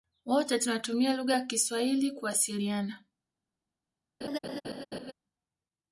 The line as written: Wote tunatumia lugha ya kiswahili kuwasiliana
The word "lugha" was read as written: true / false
true